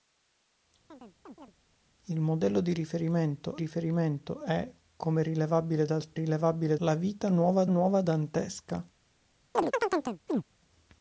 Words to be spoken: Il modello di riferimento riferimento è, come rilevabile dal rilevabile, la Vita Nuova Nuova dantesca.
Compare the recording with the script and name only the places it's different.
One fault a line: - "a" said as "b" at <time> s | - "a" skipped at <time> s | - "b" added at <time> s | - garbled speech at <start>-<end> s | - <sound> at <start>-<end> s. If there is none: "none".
- chirp at 0.9-1.5 s
- chirp at 9.5-10.4 s